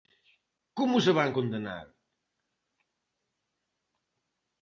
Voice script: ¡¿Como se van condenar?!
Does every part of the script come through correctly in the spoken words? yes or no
yes